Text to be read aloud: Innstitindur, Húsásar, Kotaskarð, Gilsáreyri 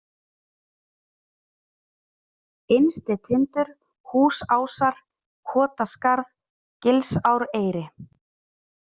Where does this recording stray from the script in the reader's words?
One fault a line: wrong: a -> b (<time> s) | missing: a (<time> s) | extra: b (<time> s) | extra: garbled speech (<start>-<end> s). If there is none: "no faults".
no faults